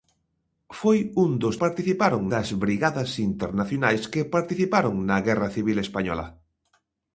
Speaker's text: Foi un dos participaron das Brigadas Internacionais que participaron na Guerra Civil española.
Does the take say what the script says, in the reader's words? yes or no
yes